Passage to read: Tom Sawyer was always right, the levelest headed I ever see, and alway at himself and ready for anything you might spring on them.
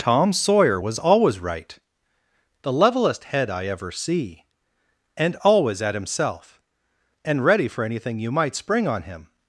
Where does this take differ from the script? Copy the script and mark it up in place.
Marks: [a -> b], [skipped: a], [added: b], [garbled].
Tom Sawyer was always right, the levelest [headed -> head] I ever see, and [alway -> always] at himself and ready for anything you might spring on [them. -> him]